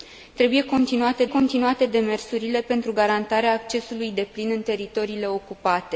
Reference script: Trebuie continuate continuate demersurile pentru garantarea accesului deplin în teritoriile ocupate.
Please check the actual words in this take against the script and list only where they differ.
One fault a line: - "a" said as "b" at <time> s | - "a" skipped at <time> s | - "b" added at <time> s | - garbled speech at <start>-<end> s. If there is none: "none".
none